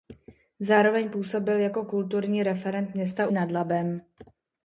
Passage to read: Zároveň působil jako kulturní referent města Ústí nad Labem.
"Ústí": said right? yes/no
no